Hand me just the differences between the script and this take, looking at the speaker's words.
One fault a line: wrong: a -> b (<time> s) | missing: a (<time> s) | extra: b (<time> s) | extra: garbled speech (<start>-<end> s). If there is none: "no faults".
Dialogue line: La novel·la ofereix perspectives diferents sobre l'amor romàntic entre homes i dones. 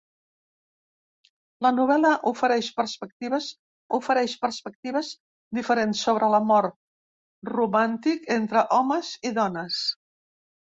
extra: ofereix perspectives (4.0 s)